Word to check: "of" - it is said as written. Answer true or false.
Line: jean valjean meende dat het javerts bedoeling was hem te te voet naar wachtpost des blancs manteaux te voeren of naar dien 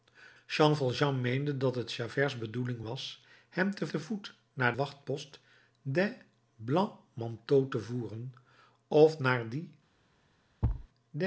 true